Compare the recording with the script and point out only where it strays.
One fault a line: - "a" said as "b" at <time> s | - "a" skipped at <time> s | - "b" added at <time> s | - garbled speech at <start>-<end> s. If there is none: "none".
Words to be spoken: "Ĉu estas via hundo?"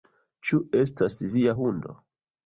none